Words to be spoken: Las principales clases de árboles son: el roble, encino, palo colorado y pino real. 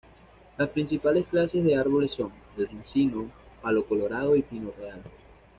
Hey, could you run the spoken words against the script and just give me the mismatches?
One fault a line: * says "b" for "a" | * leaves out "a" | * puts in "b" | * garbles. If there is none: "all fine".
* leaves out "roble"